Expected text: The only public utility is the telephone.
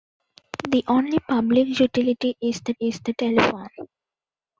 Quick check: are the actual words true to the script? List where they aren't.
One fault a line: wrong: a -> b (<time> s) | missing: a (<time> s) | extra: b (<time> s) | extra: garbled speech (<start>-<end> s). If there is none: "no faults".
extra: is the (2.8 s)